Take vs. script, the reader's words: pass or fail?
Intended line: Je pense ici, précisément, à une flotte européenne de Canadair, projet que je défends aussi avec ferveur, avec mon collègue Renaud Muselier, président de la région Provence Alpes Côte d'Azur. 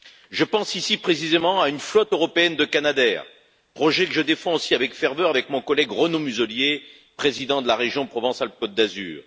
pass